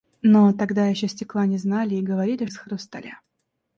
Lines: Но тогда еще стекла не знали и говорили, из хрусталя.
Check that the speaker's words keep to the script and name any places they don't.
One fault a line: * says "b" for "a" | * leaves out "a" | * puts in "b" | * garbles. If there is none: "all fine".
all fine